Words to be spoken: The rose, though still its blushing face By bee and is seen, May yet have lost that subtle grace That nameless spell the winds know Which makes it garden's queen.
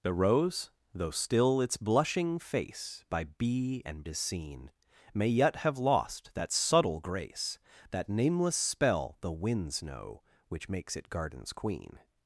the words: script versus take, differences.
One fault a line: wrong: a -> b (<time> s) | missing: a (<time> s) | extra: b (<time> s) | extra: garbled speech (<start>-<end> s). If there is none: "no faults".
no faults